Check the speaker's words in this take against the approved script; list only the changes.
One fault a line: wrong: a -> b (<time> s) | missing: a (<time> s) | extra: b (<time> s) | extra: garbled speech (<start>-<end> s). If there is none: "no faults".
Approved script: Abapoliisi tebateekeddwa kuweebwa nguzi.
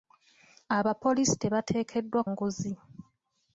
missing: kuweebwa (2.2 s)